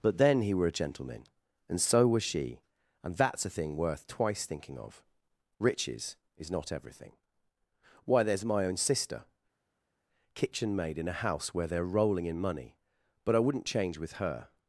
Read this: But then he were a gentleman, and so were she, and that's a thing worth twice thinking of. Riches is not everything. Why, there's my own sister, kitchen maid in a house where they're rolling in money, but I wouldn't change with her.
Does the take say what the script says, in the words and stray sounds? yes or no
no